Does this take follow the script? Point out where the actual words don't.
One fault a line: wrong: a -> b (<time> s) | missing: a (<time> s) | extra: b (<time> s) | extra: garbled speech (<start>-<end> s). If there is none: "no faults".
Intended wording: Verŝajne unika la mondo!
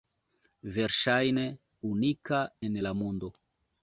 extra: en (2.7 s)